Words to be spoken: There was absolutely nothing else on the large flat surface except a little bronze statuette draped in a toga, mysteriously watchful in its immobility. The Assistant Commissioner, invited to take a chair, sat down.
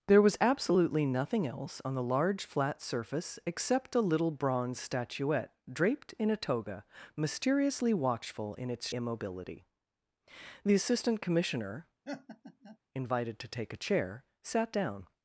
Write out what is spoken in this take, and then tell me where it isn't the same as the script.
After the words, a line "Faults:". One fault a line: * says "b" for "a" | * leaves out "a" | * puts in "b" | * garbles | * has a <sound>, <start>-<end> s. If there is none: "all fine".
There was absolutely nothing else on the large flat surface except a little bronze statuette draped in a toga, mysteriously watchful in its immobility. The Assistant Commissioner, invited to take a chair, sat down.
Faults:
* has a laugh, 12.0-12.8 s